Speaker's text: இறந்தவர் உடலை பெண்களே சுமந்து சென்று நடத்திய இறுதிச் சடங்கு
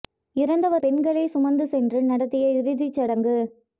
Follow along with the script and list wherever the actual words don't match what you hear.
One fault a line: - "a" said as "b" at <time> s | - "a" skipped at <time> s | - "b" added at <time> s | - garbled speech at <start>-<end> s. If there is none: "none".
- "உடலை" skipped at 0.8 s